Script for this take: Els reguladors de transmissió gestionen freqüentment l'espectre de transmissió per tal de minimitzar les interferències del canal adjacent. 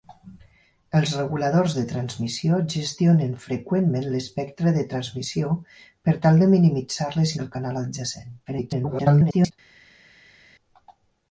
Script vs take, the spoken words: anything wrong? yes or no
yes